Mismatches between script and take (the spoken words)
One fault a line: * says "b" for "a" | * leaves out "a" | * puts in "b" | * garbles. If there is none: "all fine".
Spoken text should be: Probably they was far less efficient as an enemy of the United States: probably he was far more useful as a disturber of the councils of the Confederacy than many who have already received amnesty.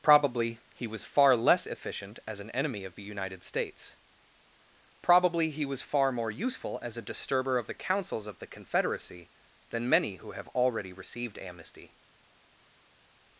* says "he" for "they"